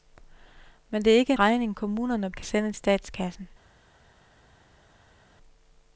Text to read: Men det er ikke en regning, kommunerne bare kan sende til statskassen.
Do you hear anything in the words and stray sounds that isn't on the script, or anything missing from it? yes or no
yes